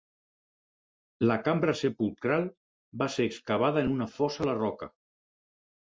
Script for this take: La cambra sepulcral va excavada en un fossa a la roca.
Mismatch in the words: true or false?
true